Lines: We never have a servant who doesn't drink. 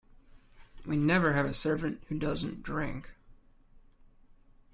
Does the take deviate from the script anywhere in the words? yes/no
no